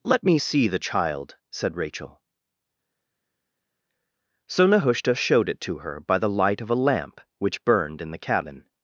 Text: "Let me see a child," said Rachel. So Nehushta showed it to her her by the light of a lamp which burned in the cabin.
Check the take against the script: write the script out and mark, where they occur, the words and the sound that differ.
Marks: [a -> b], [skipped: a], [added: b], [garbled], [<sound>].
"Let me see [a -> the] child," said Rachel. So Nehushta showed it to her [skipped: her] by the light of a lamp which burned in the cabin.